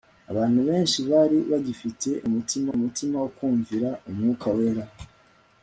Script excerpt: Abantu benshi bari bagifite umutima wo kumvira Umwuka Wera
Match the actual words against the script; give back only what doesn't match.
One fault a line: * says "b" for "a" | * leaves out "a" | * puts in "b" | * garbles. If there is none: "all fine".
* puts in "umutima"